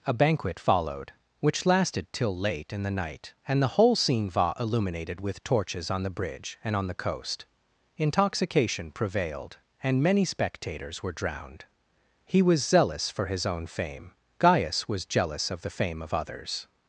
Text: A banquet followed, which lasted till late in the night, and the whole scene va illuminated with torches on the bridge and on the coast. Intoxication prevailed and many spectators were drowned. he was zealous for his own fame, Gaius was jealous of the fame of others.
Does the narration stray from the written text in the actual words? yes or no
no